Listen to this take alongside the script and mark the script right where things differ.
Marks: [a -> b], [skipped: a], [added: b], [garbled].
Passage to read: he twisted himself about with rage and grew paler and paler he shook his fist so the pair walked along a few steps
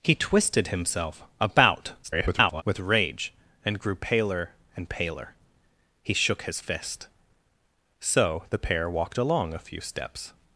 he twisted himself about [garbled] with rage and grew paler and paler he shook his fist so the pair walked along a few steps